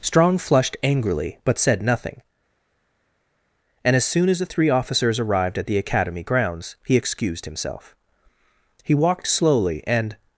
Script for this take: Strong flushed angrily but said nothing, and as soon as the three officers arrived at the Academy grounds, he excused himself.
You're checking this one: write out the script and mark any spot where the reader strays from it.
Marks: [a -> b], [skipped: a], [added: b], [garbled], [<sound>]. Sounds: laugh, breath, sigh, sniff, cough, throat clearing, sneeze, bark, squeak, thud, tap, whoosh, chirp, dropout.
Strong flushed angrily but said nothing, and as soon as the three officers arrived at the Academy grounds, he excused himself. [added: He walked slowly and]